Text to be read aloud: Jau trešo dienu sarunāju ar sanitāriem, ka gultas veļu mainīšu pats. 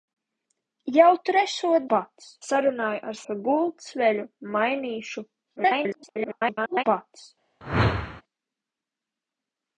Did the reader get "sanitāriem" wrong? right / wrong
wrong